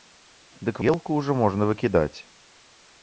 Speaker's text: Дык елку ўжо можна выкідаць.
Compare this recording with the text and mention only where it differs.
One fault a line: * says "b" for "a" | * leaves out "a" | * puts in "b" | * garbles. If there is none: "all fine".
all fine